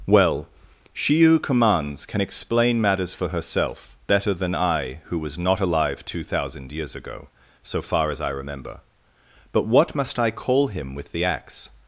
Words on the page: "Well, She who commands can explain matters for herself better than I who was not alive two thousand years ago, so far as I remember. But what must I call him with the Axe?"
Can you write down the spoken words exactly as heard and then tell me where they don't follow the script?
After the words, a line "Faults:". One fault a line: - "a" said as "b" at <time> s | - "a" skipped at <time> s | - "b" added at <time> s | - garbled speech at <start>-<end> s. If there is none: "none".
"Well, She who commands can explain matters for herself better than I who was not alive two thousand years ago, so far as I remember. But what must I call him with the Axe?"
Faults:
none